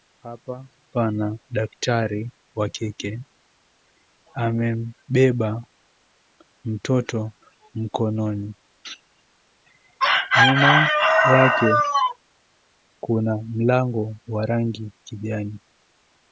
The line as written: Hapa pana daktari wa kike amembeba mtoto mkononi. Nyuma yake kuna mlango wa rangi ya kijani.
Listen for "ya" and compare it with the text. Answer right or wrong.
wrong